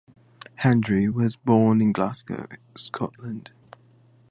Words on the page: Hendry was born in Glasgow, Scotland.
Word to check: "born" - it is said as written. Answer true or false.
true